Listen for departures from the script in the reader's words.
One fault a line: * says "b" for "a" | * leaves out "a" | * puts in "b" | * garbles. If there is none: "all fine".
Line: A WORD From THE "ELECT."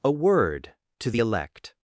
* says "TO" for "From"